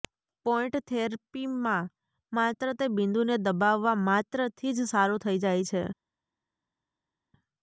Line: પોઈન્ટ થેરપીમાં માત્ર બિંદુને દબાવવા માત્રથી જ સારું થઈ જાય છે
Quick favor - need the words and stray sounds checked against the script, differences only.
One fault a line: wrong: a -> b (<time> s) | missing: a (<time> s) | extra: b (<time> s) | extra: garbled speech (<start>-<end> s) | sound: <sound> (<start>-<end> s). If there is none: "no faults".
extra: તે (2.8 s)